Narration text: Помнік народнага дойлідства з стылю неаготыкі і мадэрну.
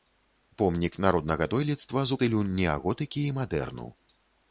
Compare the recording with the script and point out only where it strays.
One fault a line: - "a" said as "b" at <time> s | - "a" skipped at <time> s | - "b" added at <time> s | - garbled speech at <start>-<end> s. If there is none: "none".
none